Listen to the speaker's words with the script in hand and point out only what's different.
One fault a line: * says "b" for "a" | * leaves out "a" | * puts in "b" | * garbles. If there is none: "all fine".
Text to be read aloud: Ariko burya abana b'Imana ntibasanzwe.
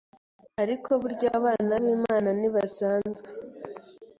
all fine